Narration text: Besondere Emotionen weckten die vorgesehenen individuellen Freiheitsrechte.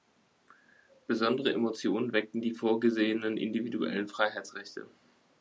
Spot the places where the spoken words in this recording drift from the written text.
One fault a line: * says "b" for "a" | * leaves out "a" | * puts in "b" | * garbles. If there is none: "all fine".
all fine